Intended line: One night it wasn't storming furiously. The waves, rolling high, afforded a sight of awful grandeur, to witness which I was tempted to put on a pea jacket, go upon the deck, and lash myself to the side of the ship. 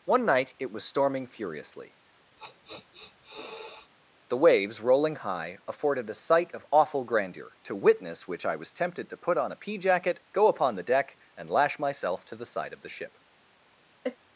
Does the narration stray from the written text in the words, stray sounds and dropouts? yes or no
yes